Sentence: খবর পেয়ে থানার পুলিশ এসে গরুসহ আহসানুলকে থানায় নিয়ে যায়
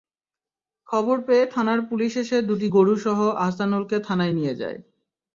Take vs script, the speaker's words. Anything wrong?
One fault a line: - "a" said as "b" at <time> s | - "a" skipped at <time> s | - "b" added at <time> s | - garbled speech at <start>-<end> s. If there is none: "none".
- "দুটি" added at 2.5 s